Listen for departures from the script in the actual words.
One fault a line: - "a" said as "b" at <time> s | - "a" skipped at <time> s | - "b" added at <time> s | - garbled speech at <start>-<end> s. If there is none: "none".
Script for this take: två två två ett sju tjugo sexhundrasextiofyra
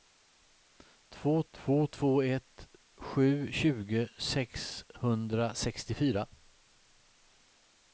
none